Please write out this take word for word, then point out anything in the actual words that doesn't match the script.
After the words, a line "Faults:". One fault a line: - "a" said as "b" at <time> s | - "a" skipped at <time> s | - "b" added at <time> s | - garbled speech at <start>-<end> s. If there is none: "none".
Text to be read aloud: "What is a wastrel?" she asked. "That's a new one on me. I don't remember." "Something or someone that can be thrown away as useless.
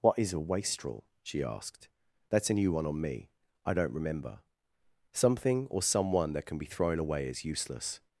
"What is a wastrel?" she asked. "That's a new one on me. I don't remember." "Something or someone that can be thrown away as useless.
Faults:
none